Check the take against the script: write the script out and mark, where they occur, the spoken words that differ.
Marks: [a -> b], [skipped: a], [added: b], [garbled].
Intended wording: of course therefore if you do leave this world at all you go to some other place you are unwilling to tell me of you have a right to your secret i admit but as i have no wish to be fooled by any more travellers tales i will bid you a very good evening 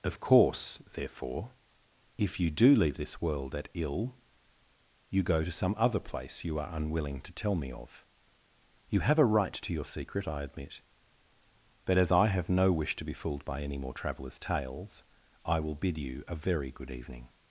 of course therefore if you do leave this world at [all -> ill] you go to some other place you are unwilling to tell me of you have a right to your secret i admit but as i have no wish to be fooled by any more travellers tales i will bid you a very good evening